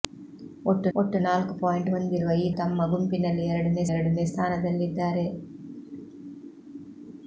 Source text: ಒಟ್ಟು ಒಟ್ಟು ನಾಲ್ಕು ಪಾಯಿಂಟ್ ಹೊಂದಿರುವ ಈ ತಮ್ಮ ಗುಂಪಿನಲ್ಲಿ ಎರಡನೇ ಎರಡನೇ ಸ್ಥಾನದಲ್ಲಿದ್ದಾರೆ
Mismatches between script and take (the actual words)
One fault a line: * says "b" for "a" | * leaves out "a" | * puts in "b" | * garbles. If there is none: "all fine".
all fine